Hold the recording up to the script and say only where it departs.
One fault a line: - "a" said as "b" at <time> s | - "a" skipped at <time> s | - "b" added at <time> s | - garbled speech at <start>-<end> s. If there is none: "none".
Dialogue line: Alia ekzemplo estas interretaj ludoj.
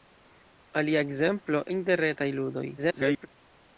- "estas" skipped at 1.6 s
- garbled speech at 2.8-3.3 s